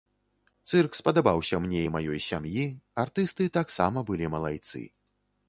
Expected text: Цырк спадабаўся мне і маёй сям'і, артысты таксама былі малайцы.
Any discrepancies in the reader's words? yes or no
no